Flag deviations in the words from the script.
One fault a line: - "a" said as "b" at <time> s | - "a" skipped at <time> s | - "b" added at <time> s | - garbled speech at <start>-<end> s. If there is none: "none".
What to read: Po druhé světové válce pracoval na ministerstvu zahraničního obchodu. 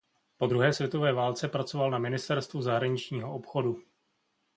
none